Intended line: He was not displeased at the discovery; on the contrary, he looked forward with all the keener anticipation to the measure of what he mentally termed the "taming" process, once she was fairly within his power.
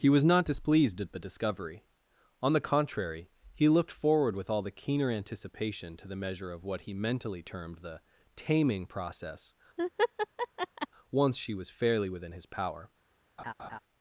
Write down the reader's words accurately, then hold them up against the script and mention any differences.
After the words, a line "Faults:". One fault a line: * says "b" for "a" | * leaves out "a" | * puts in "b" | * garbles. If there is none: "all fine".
He was not displeased at the discovery; on the contrary, he looked forward with all the keener anticipation to the measure of what he mentally termed the "taming" process, once she was fairly within his power.
Faults:
all fine